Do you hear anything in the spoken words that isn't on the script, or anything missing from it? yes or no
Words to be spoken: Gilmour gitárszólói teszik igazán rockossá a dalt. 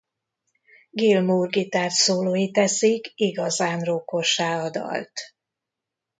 no